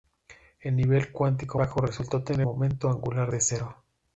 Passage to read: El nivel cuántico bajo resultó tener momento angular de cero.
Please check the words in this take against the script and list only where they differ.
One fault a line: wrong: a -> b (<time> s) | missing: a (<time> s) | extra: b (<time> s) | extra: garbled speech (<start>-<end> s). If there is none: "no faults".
no faults